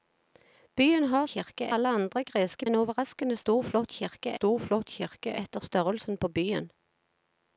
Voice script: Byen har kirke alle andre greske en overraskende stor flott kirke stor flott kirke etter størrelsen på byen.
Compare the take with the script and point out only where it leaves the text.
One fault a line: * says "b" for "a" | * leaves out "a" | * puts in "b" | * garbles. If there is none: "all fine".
all fine